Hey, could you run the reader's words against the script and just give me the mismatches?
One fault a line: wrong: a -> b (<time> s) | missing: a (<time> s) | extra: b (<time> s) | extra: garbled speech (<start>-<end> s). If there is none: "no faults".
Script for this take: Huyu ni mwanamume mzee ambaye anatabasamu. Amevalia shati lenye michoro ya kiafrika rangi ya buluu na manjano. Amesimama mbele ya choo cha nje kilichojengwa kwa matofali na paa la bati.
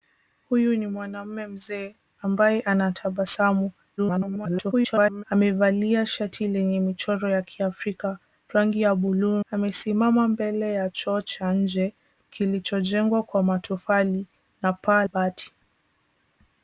extra: garbled speech (4.0-5.2 s)
missing: na manjano (9.4 s)
missing: la (15.0 s)